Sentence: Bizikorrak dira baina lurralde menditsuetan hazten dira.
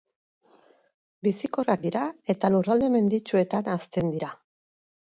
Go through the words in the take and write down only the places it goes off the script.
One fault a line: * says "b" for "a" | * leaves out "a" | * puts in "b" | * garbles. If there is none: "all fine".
* says "eta" for "baina"